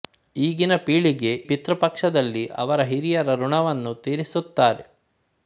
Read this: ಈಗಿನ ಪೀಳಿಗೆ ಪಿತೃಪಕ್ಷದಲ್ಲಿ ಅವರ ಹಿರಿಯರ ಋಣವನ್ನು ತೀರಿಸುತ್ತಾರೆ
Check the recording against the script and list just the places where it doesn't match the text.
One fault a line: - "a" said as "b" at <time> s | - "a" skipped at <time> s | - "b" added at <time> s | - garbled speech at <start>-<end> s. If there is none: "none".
none